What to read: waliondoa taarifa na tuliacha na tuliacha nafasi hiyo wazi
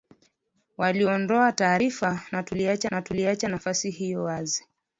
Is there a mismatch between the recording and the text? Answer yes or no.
no